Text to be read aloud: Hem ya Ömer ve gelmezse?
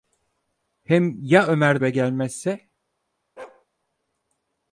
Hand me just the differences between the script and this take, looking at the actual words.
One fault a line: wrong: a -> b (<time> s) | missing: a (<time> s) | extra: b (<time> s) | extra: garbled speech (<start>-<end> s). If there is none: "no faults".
no faults